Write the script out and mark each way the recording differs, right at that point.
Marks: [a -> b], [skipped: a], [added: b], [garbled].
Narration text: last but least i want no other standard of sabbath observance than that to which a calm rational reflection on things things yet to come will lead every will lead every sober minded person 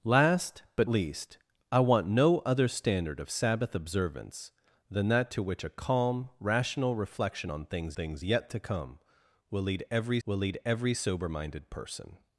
last but least i want no other standard of sabbath observance than that to which a calm rational reflection on things things yet to come will lead every will lead every sober minded person